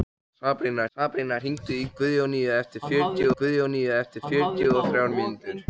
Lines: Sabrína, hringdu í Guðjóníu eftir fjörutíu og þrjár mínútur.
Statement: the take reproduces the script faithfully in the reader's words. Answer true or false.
false